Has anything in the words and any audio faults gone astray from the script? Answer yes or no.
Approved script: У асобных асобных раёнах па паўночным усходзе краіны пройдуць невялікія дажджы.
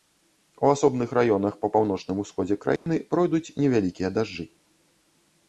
yes